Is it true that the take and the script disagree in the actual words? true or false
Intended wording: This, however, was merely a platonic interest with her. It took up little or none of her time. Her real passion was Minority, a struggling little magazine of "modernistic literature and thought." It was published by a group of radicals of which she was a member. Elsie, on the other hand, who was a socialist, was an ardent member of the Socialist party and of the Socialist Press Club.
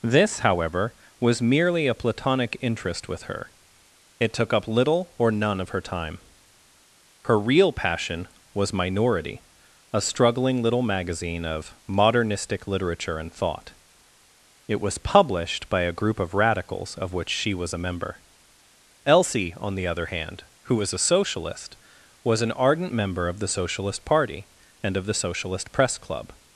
false